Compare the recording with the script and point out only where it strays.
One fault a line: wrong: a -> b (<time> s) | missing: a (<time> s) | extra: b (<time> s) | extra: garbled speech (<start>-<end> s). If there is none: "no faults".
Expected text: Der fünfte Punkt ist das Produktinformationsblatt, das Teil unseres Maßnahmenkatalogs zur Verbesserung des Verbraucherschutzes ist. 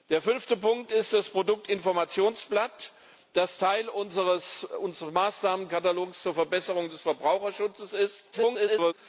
extra: garbled speech (8.3-8.9 s)